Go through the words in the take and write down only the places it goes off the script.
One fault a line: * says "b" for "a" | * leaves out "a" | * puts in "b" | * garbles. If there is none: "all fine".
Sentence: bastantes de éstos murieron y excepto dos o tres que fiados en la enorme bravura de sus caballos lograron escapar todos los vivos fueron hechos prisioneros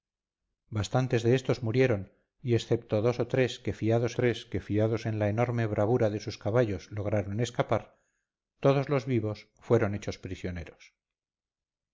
* puts in "tres que fiados"